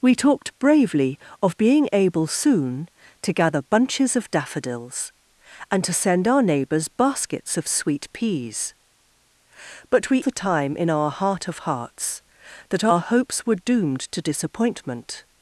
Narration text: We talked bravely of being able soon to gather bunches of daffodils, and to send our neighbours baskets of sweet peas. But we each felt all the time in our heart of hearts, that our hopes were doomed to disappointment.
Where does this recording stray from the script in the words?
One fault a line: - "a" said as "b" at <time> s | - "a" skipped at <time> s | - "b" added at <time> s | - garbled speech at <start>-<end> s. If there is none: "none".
- "each felt all" skipped at 10.2 s